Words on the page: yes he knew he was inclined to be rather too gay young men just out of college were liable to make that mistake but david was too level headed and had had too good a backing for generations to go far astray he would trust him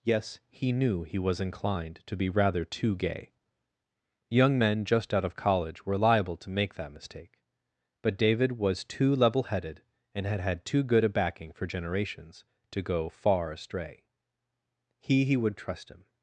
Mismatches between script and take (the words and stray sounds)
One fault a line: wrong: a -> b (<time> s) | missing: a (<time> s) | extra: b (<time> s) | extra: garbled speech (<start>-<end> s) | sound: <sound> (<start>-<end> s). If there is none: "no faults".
extra: he (15.2 s)